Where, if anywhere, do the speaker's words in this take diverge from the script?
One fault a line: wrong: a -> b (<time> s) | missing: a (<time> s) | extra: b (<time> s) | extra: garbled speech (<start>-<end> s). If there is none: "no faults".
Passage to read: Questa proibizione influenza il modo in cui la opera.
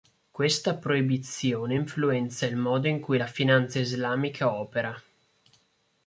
extra: finanza islamica (3.3 s)